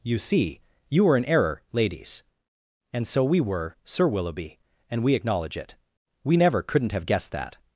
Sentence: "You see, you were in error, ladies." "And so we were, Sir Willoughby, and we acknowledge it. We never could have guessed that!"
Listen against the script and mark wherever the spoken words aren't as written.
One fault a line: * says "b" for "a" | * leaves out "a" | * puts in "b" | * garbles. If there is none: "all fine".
* says "couldn't" for "could"